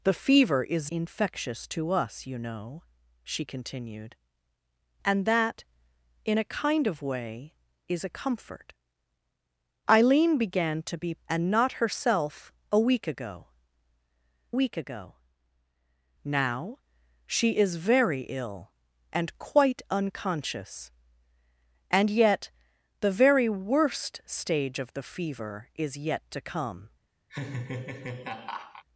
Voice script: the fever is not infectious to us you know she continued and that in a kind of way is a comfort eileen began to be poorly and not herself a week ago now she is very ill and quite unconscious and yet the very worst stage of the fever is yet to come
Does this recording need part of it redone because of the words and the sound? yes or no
yes